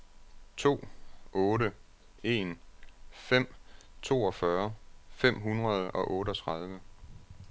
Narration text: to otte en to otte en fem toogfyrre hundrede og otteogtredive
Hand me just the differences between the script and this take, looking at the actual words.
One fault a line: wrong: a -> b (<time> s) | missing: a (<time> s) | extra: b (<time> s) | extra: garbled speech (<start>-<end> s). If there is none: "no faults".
wrong: to otte en -> fem toogfyrre (3.1 s)
missing: toogfyrre (5.4 s)